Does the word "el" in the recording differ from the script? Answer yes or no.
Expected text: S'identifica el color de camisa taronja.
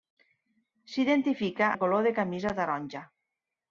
no